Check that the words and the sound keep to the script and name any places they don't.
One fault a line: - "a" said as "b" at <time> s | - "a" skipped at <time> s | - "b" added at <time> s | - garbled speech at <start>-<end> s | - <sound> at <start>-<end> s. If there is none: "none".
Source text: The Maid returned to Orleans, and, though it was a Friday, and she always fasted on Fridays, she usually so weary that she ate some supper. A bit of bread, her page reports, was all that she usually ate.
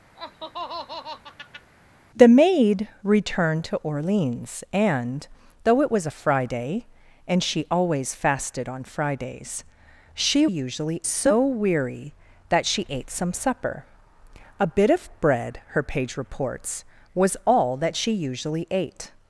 - laugh at 0.1-1.7 s